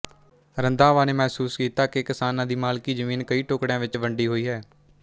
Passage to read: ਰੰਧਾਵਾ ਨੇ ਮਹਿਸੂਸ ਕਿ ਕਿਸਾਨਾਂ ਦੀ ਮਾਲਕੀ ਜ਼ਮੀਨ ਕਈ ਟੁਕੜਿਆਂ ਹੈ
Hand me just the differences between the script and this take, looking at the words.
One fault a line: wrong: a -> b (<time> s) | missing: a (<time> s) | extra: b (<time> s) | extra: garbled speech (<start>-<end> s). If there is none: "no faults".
extra: ਕੀਤਾ (1.5 s)
extra: ਵਿੱਚ ਵੰਡੀ ਹੋਈ (3.8 s)